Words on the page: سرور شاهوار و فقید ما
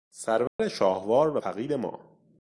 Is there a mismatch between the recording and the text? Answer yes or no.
no